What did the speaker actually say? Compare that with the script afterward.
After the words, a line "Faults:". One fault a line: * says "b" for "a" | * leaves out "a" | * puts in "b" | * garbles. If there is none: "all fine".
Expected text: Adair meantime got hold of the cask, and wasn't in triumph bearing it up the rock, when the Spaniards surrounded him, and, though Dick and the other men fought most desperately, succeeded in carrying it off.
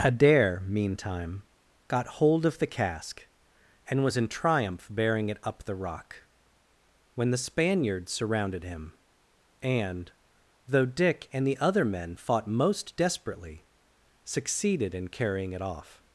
Adair meantime got hold of the cask, and was in triumph bearing it up the rock, when the Spaniards surrounded him, and, though Dick and the other men fought most desperately, succeeded in carrying it off.
Faults:
* says "was" for "wasn't"